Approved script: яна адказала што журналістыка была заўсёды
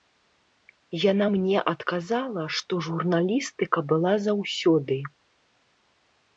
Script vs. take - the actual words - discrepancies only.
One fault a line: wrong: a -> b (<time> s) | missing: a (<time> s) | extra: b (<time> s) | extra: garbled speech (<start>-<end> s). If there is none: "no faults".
extra: мне (1.3 s)